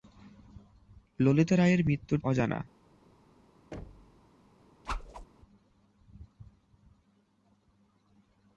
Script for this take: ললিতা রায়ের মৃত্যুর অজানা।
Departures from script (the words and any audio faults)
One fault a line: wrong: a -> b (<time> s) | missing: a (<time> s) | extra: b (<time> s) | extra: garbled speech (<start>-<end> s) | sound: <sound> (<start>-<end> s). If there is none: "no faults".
sound: thud (3.7-4.2 s)
sound: whoosh (4.9-5.3 s)